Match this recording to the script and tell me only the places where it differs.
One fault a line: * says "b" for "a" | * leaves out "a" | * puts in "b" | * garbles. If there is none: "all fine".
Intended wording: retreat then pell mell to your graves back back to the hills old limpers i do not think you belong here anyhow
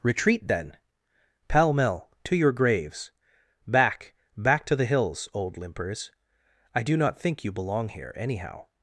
all fine